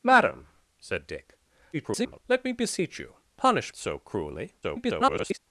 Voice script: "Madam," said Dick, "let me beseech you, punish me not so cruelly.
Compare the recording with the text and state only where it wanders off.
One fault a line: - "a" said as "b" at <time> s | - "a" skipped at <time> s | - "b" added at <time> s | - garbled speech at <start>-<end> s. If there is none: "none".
- garbled speech at 1.7-2.2 s
- "me not" skipped at 3.7 s
- garbled speech at 4.6-5.4 s